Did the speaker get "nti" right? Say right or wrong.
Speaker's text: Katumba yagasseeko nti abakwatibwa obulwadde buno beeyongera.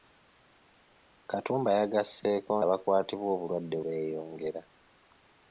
wrong